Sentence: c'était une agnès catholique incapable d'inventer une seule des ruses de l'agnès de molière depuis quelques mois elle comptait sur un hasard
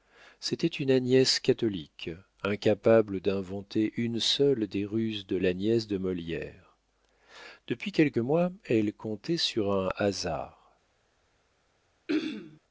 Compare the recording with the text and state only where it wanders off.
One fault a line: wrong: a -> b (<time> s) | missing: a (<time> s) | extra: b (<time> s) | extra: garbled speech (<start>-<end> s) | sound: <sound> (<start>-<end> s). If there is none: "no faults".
sound: throat clearing (12.1-12.6 s)